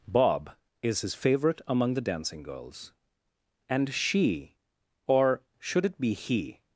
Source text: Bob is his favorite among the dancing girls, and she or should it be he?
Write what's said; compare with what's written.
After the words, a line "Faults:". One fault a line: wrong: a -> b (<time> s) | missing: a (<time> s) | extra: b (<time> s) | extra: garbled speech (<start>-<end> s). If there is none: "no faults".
Bob is his favorite among the dancing girls, and she or should it be he?
Faults:
no faults